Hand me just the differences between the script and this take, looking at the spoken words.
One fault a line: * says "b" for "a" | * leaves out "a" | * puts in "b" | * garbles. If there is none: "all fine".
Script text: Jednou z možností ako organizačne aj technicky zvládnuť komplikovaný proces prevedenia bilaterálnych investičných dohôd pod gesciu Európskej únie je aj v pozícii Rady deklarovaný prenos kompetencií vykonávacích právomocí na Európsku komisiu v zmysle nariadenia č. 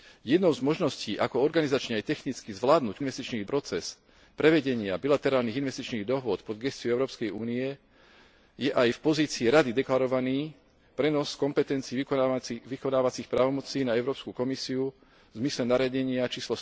* says "investičných" for "komplikovaný"